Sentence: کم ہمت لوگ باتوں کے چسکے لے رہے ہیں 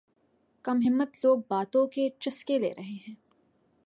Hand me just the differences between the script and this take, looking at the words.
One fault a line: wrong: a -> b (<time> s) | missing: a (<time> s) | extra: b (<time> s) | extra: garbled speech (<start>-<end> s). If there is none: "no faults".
no faults